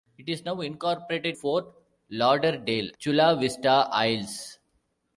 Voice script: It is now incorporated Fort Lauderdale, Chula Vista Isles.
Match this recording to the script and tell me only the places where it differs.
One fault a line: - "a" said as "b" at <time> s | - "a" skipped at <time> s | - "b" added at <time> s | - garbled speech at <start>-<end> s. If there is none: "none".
none